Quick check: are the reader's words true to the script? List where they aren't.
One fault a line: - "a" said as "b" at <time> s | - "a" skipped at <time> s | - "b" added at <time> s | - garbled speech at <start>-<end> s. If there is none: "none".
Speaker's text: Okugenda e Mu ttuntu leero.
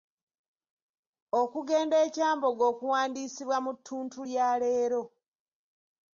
- "Kyambogo okuwandiisibwa" added at 2.1 s
- "lya" added at 4.3 s